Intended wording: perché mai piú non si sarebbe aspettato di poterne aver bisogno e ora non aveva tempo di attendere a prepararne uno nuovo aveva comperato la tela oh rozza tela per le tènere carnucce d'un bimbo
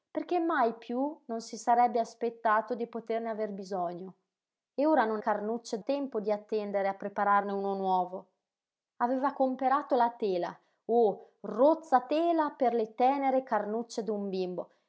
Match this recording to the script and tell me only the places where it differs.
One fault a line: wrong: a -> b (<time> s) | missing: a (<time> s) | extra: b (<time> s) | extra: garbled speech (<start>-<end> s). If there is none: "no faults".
wrong: aveva -> carnucce (5.2 s)